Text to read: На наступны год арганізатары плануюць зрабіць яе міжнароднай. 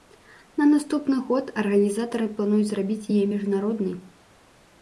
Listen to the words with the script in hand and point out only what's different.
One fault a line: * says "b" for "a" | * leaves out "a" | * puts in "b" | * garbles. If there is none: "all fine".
all fine